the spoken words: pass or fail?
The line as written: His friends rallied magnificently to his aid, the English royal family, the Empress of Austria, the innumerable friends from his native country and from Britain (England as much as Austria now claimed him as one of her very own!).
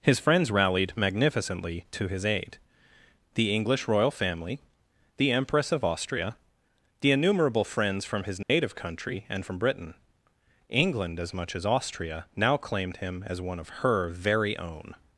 pass